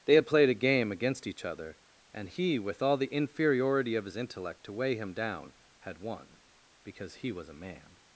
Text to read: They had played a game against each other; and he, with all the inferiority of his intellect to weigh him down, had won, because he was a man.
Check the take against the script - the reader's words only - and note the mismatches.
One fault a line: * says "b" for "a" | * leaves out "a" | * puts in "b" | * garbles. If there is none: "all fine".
all fine